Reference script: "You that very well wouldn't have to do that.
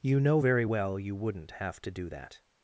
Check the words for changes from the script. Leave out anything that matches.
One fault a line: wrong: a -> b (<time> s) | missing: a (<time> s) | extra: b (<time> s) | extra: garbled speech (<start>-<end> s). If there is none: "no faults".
wrong: that -> know (0.2 s)
extra: you (1.0 s)